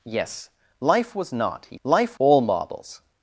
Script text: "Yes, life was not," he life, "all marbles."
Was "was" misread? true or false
false